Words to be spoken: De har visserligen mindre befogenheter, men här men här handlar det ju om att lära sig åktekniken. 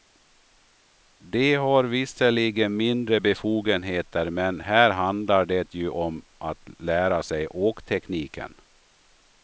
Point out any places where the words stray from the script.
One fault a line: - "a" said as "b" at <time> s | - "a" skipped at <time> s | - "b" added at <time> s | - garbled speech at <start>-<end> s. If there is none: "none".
- "men här" skipped at 4.9 s